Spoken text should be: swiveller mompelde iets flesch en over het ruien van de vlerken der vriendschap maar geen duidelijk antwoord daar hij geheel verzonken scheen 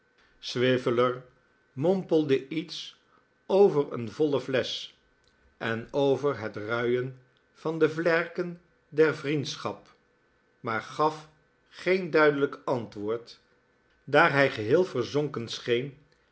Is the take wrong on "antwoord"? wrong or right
right